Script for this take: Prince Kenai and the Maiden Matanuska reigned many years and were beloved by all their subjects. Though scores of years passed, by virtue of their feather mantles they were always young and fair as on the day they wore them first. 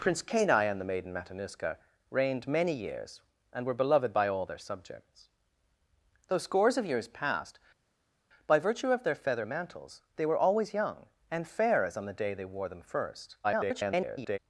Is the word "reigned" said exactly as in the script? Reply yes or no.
yes